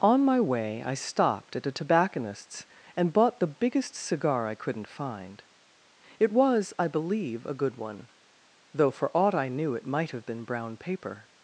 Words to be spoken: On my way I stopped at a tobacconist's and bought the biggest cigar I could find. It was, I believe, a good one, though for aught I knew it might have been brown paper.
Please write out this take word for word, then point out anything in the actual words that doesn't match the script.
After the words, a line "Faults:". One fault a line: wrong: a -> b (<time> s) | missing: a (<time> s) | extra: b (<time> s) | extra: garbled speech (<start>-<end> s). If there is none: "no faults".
On my way I stopped at a tobacconist's and bought the biggest cigar I couldn't find. It was, I believe, a good one, though for aught I knew it might have been brown paper.
Faults:
wrong: could -> couldn't (4.5 s)